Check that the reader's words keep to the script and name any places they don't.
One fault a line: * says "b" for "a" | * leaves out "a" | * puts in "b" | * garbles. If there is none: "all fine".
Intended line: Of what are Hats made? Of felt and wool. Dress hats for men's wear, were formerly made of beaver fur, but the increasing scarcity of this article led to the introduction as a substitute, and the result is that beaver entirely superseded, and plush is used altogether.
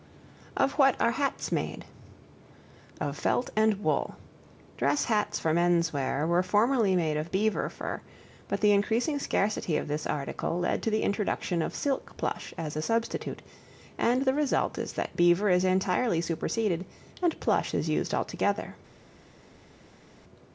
* puts in "of silk plush"
* puts in "is"